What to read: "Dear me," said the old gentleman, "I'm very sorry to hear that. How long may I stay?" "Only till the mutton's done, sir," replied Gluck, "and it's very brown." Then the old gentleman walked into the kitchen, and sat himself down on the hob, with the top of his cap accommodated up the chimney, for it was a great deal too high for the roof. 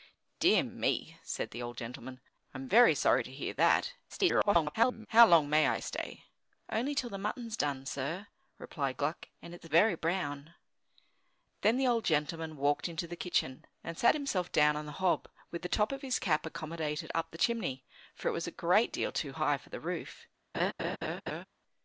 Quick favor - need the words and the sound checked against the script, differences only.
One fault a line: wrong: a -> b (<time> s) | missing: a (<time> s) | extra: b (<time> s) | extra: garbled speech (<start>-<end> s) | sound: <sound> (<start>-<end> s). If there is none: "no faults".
extra: garbled speech (4.1-5.1 s)
sound: laugh (20.5-21.5 s)